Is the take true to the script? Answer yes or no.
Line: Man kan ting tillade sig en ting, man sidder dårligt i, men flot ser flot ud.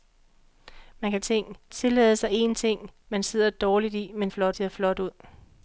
yes